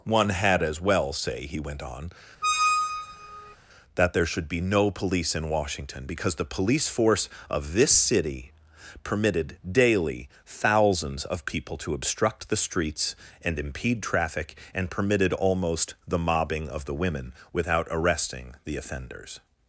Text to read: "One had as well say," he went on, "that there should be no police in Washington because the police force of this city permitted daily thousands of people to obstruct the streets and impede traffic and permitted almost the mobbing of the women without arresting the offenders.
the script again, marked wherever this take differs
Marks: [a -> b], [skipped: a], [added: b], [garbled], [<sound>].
"One had as well say," he went on, [squeak] "that there should be no police in Washington because the police force of this city permitted daily thousands of people to obstruct the streets and impede traffic and permitted almost the mobbing of the women without arresting the offenders.